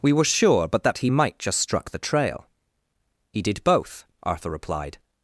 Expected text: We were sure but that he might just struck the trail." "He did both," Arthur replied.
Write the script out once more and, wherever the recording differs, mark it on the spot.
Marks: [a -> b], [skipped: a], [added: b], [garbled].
We were sure but that he might just struck the trail." "He did both," Arthur replied.